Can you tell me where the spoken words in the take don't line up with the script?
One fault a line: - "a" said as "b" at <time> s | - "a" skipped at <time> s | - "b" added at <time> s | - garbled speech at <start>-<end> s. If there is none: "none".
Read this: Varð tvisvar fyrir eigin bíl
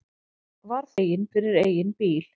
- "tvisvar" said as "eigin" at 1.0 s